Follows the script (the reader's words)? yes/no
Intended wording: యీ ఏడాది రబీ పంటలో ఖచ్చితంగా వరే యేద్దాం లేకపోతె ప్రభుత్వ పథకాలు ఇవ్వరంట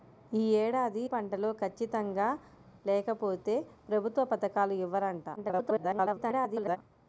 no